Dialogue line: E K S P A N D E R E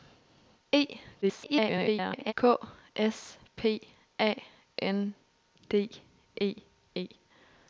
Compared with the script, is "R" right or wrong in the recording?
wrong